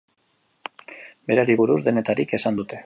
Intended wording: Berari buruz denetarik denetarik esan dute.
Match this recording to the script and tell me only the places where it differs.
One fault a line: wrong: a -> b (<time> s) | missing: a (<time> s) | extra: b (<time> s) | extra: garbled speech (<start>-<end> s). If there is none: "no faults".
missing: denetarik (2.3 s)